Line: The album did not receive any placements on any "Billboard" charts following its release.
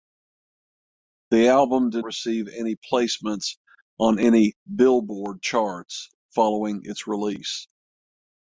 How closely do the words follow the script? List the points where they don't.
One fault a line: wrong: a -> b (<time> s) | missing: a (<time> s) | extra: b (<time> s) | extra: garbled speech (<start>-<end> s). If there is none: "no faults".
missing: not (2.0 s)